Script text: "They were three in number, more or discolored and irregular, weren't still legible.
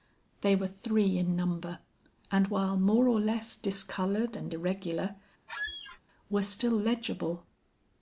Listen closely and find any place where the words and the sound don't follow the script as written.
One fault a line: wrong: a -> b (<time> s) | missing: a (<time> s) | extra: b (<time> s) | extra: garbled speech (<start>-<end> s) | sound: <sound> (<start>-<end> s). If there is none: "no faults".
extra: and while (2.3 s)
extra: less (3.2 s)
sound: squeak (5.5-6.0 s)
wrong: weren't -> were (6.3 s)